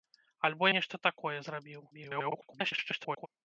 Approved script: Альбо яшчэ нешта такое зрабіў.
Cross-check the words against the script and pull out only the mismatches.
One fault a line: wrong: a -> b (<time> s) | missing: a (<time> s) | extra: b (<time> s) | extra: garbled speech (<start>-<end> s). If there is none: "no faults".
missing: яшчэ (0.7 s)
extra: garbled speech (1.9-3.3 s)